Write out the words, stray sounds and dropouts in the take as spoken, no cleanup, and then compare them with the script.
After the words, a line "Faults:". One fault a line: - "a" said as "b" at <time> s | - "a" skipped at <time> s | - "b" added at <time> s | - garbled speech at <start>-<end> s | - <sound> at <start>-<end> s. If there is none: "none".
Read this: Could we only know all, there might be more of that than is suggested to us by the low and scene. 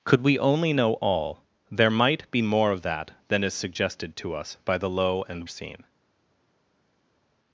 Could we only know all, there might be more of that than is suggested to us by the low and scene.
Faults:
none